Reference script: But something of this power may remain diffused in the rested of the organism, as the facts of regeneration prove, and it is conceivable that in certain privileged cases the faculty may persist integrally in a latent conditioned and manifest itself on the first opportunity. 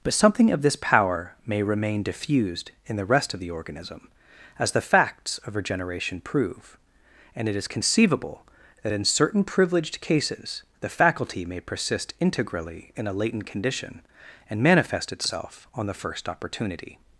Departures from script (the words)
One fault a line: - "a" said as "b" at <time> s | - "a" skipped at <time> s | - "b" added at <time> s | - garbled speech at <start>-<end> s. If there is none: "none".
- "rested" said as "rest" at 3.0 s
- "conditioned" said as "condition" at 13.5 s